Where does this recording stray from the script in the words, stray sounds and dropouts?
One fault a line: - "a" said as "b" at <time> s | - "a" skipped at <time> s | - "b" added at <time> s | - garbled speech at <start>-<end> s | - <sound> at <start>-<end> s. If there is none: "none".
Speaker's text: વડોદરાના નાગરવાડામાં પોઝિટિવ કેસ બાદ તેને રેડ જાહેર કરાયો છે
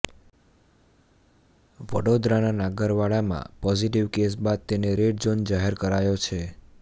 - "ઝોન" added at 5.3 s